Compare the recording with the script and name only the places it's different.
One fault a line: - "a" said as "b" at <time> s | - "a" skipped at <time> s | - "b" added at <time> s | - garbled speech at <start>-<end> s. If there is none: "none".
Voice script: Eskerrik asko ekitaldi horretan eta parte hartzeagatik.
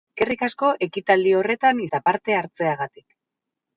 none